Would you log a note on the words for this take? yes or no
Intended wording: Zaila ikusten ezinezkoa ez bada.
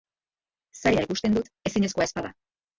yes